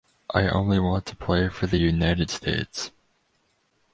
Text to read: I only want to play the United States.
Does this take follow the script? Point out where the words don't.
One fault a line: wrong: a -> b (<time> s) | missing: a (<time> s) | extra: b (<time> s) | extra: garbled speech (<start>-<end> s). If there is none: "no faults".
extra: for (1.5 s)